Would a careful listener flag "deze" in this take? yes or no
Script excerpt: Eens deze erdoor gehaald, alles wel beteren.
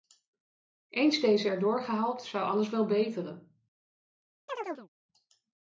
no